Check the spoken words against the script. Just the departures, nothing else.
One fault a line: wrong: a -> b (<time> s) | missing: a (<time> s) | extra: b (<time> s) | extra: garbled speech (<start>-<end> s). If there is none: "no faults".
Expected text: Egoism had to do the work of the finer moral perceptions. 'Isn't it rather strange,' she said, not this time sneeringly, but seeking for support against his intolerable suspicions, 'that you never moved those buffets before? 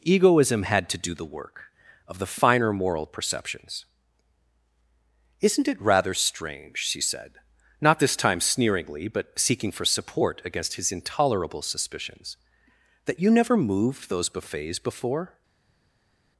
no faults